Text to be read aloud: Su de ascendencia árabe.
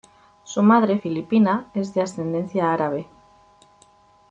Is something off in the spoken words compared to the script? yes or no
yes